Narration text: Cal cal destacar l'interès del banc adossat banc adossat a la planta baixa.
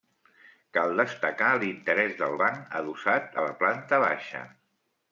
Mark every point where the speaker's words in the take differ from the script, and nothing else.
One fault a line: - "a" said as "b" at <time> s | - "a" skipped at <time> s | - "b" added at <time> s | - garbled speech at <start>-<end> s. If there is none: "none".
- "cal" skipped at 0.9 s
- "banc adossat" skipped at 3.4 s